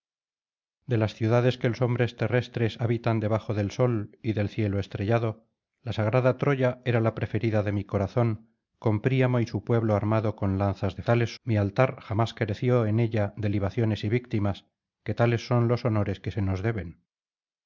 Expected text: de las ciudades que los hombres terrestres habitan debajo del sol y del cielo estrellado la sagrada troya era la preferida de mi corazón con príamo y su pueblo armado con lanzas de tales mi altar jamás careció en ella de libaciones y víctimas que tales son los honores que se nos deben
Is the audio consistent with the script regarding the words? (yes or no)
yes